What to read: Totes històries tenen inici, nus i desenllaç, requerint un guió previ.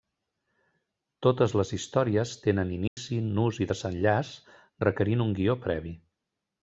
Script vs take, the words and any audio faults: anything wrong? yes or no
yes